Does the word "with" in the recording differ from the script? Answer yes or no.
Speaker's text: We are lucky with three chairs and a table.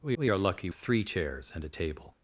yes